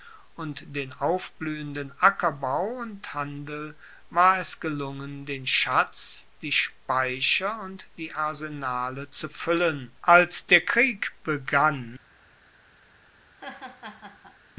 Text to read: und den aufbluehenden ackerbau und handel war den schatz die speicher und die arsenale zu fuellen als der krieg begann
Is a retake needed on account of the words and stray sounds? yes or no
yes